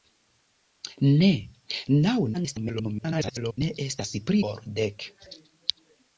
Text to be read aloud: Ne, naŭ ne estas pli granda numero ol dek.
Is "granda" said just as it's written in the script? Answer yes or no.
no